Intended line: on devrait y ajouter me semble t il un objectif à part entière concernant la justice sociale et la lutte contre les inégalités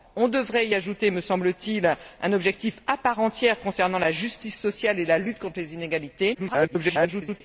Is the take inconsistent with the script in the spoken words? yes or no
yes